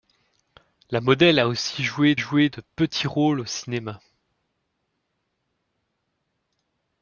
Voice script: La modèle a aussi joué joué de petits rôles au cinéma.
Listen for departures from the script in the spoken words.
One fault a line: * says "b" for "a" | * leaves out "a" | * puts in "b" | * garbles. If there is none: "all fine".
all fine